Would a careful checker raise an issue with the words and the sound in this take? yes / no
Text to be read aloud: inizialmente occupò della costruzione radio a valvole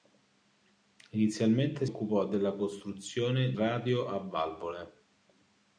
no